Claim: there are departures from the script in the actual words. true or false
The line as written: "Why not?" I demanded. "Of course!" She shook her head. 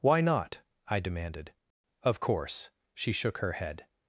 false